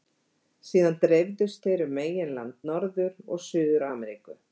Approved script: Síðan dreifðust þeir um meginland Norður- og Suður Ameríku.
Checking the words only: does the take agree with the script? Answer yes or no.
yes